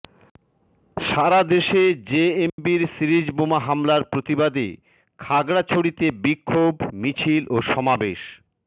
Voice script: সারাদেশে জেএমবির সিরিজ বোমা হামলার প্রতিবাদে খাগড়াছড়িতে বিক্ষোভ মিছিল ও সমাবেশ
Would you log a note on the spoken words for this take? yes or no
no